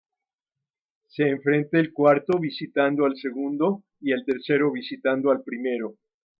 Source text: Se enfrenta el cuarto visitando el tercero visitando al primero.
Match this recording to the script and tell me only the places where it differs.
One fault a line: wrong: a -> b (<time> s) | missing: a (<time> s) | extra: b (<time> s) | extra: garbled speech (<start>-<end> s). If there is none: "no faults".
extra: al segundo y (3.0 s)